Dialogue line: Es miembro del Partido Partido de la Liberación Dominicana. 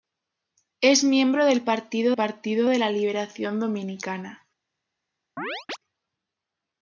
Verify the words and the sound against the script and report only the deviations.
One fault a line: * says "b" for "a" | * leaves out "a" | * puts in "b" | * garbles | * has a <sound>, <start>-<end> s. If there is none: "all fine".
* has a chirp, 5.4-5.8 s